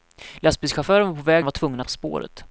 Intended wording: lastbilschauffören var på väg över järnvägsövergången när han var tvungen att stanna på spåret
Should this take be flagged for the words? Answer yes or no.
yes